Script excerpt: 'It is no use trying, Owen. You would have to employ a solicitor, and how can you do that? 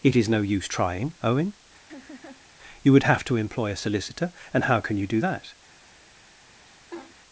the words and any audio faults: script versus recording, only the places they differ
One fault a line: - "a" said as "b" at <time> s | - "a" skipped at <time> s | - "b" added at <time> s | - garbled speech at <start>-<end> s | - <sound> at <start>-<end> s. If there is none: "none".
- laugh at 1.9-2.5 s
- laugh at 6.9-7.2 s